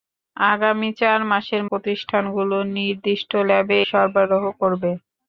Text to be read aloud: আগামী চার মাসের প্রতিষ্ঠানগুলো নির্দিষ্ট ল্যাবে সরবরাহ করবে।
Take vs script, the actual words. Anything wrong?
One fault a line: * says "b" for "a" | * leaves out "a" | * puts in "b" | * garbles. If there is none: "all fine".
all fine